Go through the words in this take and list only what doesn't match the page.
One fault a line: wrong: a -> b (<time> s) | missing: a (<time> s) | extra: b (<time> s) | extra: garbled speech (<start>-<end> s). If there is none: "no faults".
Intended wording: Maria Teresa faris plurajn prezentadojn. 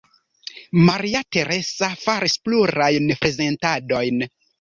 no faults